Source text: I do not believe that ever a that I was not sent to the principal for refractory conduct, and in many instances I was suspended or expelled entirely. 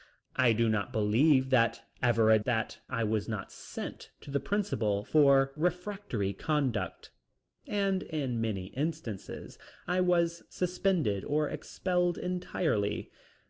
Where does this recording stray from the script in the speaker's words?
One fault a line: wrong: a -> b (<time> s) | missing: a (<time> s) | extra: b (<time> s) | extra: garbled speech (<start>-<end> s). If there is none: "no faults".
no faults